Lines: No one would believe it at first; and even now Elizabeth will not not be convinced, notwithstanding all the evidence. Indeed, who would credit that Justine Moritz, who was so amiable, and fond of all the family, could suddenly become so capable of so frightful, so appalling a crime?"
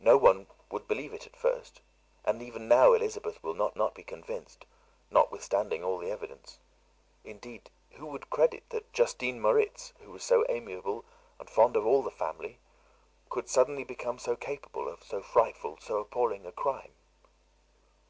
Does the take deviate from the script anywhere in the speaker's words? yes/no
no